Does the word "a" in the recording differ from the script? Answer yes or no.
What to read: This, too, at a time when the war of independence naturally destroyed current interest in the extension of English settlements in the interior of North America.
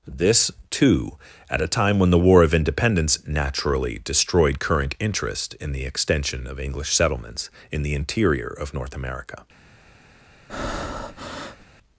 no